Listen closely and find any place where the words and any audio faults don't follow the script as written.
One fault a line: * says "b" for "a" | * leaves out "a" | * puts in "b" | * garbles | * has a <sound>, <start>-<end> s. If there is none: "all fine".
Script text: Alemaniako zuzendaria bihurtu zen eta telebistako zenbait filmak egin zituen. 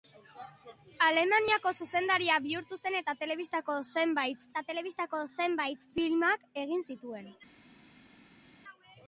* puts in "eta telebistako zenbait"